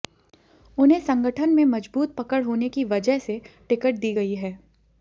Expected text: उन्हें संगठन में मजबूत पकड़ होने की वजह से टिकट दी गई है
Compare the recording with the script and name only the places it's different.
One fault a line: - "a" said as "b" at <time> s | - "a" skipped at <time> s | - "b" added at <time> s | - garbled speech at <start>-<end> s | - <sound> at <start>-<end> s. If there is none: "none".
none